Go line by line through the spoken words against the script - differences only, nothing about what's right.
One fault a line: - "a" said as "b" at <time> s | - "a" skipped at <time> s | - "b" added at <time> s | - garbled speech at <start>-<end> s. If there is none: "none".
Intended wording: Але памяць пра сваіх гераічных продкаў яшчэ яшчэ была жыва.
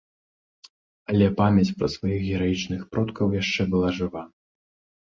- "яшчэ" skipped at 3.6 s